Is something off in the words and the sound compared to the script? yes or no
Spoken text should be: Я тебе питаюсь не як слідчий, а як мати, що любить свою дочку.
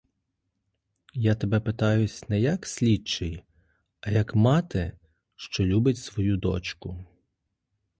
no